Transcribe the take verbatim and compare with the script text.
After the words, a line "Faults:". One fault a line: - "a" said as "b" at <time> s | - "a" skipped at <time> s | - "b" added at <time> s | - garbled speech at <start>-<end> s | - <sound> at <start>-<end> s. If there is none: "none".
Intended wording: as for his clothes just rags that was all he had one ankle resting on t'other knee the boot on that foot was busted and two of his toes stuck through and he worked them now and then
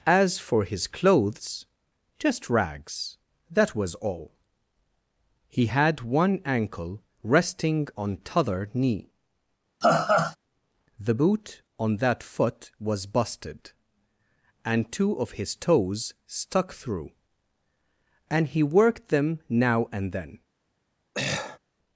as for his clothes just rags that was all he had one ankle resting on t'other knee the boot on that foot was busted and two of his toes stuck through and he worked them now and then
Faults:
- laugh at 9.8-10.4 s
- throat clearing at 21.1-21.6 s